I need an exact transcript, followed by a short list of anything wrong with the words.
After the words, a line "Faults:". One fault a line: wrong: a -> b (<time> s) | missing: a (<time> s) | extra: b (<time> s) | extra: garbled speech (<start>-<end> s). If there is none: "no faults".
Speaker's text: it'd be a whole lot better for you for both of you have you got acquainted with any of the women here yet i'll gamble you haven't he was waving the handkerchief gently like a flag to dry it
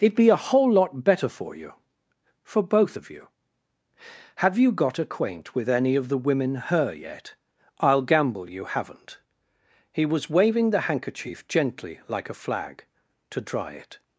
it'd be a whole lot better for you for both of you have you got acquaint with any of the women her yet i'll gamble you haven't he was waving the handkerchief gently like a flag to dry it
Faults:
wrong: acquainted -> acquaint (5.0 s)
wrong: here -> her (6.6 s)